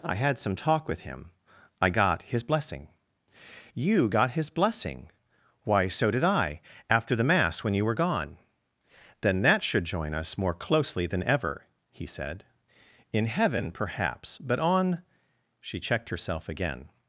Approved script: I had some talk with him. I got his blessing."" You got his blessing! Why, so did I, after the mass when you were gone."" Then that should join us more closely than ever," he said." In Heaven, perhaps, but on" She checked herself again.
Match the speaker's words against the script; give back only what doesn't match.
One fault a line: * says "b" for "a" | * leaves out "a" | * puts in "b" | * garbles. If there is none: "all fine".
all fine